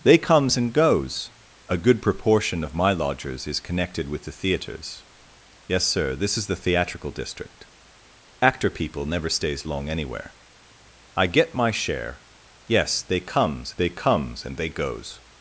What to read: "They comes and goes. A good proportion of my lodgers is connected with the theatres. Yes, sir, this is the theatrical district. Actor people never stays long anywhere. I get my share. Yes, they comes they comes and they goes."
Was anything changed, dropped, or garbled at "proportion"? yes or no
no